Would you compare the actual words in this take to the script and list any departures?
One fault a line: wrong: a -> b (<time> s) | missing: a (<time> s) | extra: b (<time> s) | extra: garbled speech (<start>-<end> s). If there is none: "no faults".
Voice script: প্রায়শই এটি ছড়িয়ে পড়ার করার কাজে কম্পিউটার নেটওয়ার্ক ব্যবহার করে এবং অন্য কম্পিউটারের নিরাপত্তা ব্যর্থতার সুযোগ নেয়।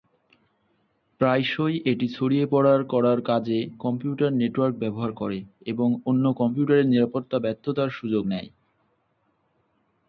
no faults